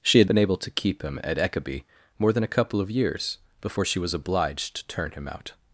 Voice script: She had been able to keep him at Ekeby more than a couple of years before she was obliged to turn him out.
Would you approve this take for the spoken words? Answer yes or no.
yes